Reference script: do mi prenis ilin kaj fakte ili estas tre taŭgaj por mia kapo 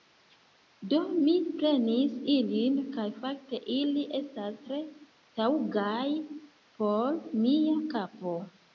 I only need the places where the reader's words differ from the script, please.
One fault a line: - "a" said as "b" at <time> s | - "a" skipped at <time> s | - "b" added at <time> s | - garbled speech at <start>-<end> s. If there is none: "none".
none